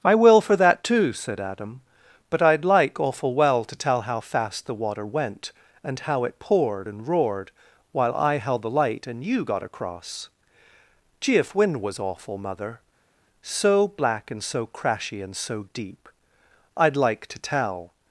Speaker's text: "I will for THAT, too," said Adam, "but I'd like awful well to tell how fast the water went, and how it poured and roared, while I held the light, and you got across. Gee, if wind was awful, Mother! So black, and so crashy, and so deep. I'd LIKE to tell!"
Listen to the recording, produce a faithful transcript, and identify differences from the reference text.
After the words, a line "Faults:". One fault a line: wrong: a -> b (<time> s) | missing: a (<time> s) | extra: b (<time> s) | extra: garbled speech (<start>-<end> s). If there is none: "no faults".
"I will for THAT, too," said Adam, "but I'd like awful well to tell how fast the water went, and how it poured and roared, while I held the light, and you got across. Gee, if wind was awful, Mother! So black, and so crashy, and so deep. I'd LIKE to tell!"
Faults:
no faults